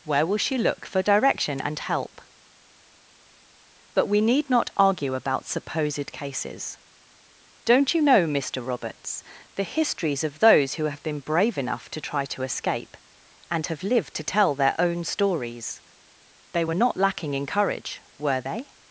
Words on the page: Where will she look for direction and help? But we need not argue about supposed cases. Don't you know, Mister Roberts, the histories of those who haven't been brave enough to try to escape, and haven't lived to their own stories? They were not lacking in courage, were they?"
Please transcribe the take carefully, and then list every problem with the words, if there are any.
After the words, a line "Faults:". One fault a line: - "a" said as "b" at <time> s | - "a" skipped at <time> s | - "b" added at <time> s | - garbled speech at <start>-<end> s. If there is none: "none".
Where will she look for direction and help? But we need not argue about supposed cases. Don't you know, Mister Roberts, the histories of those who have been brave enough to try to escape, and have lived to tell their own stories? They were not lacking in courage, were they?"
Faults:
- "haven't" said as "have" at 10.8 s
- "haven't" said as "have" at 13.7 s
- "tell" added at 14.2 s